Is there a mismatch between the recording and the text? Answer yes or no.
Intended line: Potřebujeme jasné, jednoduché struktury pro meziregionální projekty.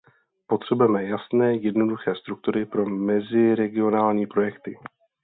no